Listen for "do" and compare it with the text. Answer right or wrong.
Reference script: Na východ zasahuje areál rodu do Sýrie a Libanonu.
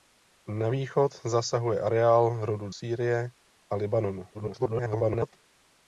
wrong